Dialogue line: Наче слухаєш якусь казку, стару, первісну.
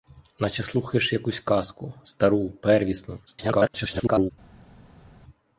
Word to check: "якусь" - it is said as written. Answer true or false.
true